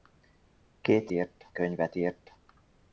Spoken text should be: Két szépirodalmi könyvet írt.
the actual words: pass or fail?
fail